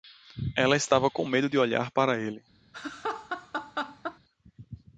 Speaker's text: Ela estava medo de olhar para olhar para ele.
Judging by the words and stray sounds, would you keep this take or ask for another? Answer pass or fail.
fail